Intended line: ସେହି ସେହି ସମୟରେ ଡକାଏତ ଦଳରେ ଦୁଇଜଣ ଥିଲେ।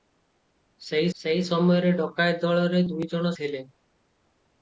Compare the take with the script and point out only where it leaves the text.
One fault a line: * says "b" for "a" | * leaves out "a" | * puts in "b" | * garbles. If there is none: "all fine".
all fine